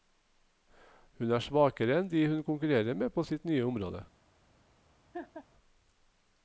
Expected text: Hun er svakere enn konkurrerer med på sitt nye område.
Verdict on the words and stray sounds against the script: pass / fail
fail